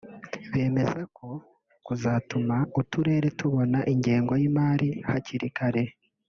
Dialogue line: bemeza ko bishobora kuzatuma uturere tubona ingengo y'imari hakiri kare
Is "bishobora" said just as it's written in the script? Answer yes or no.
no